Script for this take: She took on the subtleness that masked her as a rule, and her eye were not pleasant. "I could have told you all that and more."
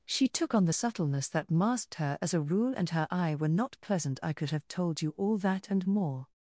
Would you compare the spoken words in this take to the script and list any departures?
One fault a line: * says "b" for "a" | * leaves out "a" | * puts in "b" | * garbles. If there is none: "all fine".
all fine